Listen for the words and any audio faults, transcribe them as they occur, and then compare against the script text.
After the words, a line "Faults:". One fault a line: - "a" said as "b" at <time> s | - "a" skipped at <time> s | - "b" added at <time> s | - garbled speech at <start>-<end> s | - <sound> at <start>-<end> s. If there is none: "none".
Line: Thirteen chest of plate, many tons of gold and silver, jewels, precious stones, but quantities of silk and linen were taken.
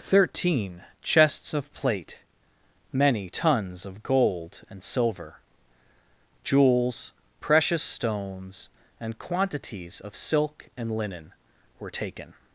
Thirteen chests of plate, many tons of gold and silver, jewels, precious stones, and quantities of silk and linen were taken.
Faults:
- "chest" said as "chests" at 1.0 s
- "but" said as "and" at 9.0 s